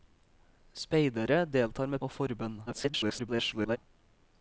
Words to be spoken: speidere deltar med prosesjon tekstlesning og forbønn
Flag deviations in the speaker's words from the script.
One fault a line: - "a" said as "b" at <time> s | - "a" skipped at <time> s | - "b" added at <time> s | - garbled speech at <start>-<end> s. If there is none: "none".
- "prosesjon tekstlesning" skipped at 2.0 s
- garbled speech at 2.7-3.8 s